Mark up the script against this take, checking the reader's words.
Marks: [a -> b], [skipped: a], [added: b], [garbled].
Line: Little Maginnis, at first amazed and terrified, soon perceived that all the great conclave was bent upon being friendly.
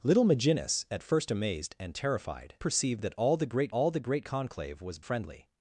Little Maginnis, at first amazed and terrified, [skipped: soon] perceived that all the great [conclave was bent upon being -> all the great conclave was] friendly.